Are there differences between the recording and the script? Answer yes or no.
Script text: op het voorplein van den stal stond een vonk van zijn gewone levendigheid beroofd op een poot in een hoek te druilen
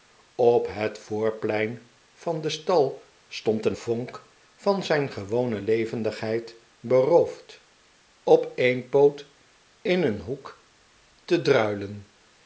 no